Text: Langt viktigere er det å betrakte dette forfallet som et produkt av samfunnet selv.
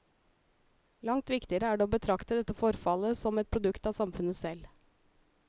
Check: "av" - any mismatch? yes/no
no